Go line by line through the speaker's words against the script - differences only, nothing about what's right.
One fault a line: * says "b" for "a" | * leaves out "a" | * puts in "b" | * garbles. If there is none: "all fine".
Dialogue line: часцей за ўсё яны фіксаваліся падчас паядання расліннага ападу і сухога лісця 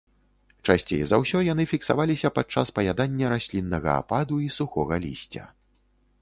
all fine